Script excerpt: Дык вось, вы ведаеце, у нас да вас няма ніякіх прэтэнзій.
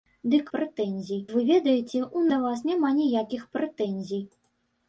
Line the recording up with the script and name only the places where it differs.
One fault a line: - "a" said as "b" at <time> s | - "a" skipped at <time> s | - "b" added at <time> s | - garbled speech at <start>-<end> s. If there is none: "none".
- "вось" said as "прэтэнзій" at 0.6 s
- "нас" skipped at 2.2 s